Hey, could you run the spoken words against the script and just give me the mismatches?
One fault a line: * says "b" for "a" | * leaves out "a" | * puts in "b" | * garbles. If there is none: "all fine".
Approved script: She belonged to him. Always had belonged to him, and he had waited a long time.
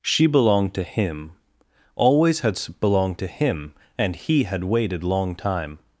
* leaves out "a"